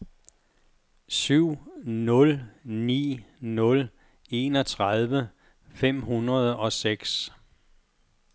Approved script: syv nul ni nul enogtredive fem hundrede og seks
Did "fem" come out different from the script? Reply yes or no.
no